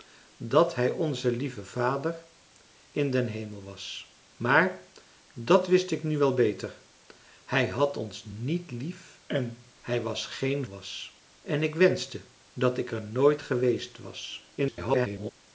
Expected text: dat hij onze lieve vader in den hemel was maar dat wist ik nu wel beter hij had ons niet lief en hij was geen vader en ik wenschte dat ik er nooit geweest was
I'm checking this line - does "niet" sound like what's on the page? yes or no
yes